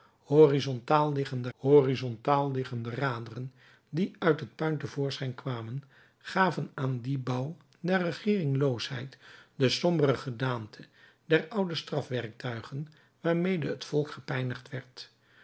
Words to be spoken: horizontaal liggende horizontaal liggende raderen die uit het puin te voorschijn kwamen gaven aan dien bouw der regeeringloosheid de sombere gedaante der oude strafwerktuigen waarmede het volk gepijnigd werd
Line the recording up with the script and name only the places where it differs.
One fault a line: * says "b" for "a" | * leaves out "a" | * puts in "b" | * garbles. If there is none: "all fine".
all fine